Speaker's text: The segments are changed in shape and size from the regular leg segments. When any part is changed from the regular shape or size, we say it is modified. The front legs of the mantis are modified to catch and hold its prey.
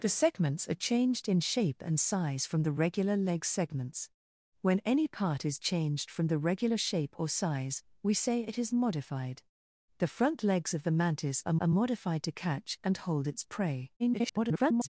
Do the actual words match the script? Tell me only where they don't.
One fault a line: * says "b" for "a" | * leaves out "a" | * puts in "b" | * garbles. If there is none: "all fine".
* puts in "are"
* garbles